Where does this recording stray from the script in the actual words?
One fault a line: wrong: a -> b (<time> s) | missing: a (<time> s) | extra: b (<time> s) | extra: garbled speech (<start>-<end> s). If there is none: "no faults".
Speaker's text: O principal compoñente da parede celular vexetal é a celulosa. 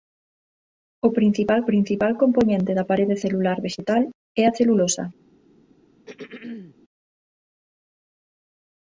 extra: principal (1.7 s)